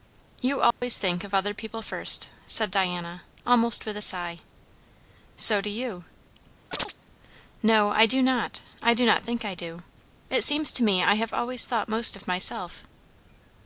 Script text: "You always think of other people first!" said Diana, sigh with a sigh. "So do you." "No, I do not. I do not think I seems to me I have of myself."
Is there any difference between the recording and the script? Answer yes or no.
yes